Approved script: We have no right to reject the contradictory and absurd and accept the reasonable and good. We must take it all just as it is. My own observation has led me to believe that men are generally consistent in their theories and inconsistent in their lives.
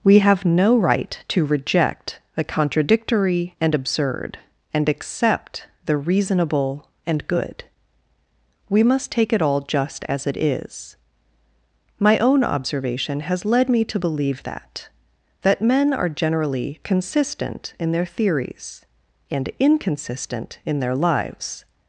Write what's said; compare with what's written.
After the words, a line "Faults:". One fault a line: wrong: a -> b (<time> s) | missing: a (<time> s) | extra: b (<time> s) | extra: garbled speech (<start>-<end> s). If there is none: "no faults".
We have no right to reject the contradictory and absurd and accept the reasonable and good. We must take it all just as it is. My own observation has led me to believe that that men are generally consistent in their theories and inconsistent in their lives.
Faults:
extra: that (15.4 s)